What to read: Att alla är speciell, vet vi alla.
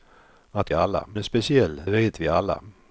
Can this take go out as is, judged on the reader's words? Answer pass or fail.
pass